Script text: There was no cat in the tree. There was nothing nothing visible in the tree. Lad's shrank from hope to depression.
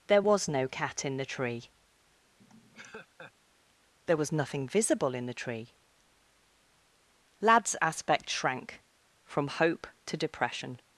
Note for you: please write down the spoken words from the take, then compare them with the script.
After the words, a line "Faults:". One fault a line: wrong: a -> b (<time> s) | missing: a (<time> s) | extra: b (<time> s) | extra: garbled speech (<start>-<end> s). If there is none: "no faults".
There was no cat in the tree. There was nothing visible in the tree. Lad's aspect shrank from hope to depression.
Faults:
missing: nothing (4.7 s)
extra: aspect (7.8 s)